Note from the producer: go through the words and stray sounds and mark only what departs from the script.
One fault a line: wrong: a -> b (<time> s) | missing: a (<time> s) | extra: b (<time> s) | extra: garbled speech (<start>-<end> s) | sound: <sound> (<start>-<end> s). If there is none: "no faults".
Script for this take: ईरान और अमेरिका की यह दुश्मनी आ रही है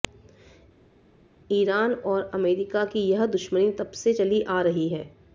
extra: तब से चली (3.7 s)